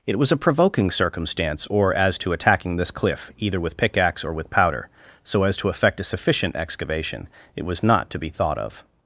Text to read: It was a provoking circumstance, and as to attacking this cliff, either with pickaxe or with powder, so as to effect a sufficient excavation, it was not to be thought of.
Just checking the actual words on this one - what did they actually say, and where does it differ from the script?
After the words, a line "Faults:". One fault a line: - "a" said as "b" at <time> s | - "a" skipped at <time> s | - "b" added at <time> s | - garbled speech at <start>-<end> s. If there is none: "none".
It was a provoking circumstance, or as to attacking this cliff, either with pickaxe or with powder, so as to effect a sufficient excavation, it was not to be thought of.
Faults:
- "and" said as "or" at 1.7 s